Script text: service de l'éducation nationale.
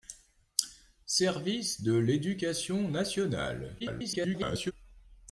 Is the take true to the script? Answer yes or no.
no